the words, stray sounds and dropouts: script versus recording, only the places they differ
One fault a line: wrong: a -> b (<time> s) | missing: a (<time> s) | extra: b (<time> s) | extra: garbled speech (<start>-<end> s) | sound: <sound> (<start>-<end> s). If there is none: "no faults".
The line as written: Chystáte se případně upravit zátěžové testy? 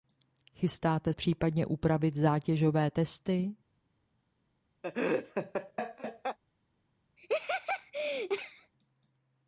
missing: se (1.1 s)
sound: laugh (4.8-6.4 s)
sound: laugh (7.2-8.7 s)